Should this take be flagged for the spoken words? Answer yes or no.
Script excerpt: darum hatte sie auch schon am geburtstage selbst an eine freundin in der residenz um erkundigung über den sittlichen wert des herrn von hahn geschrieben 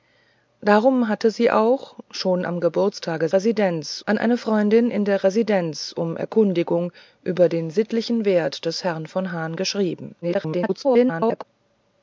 yes